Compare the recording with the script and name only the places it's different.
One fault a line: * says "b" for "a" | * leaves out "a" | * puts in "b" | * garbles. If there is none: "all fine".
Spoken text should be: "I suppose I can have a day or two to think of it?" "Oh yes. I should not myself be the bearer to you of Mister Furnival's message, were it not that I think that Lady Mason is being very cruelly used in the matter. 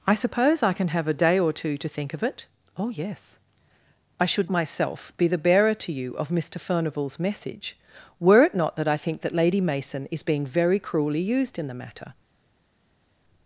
* leaves out "not"